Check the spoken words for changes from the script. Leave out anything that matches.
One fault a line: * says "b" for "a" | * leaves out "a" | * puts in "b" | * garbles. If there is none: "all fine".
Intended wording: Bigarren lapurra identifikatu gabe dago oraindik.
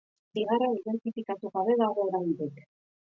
* leaves out "lapurra"